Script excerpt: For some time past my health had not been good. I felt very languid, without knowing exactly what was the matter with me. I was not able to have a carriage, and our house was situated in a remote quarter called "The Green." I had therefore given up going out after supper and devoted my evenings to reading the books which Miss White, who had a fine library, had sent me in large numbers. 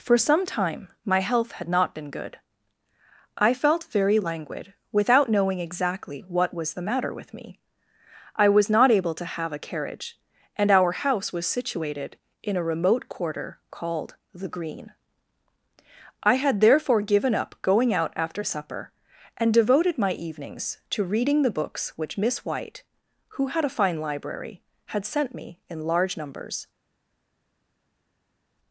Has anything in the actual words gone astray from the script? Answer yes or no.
yes